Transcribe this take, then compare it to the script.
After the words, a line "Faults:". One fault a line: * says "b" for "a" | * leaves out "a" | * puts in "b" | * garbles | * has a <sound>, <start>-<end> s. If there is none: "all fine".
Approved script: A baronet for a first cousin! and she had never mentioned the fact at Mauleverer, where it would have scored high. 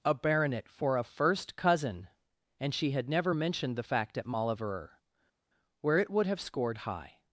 A baronet for a first cousin! and she had never mentioned the fact at Mauleverer, where it would have scored high.
Faults:
all fine